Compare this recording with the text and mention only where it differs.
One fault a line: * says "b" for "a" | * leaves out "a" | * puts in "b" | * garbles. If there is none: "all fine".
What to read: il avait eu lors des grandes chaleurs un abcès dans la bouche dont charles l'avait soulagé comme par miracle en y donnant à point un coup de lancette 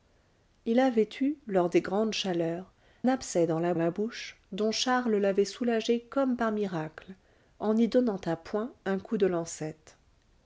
* leaves out "un"
* puts in "la"